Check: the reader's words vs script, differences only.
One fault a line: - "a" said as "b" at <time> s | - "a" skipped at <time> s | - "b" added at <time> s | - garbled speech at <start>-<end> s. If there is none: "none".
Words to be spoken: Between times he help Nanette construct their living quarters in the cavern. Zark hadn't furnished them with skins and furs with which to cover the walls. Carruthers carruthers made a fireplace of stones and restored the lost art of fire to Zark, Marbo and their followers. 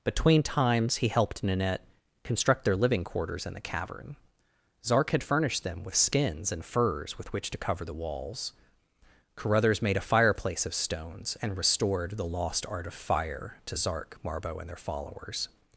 - "help" said as "helped" at 1.1 s
- "hadn't" said as "had" at 5.1 s
- "carruthers" skipped at 9.8 s